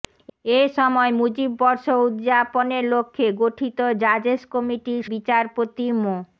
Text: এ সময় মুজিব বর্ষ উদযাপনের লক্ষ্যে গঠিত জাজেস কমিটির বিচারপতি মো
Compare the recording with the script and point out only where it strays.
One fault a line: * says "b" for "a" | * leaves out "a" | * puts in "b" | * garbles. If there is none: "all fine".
all fine